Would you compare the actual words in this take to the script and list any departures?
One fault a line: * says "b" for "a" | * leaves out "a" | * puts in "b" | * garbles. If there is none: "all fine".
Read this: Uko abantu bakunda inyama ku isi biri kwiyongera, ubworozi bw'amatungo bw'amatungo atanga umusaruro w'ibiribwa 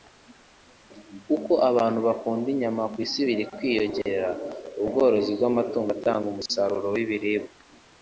* leaves out "bw'amatungo"